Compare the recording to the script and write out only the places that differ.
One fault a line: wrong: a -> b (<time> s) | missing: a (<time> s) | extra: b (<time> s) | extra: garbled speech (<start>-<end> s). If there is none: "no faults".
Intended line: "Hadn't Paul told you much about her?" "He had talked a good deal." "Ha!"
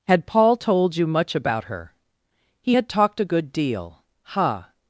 wrong: Hadn't -> Had (0.1 s)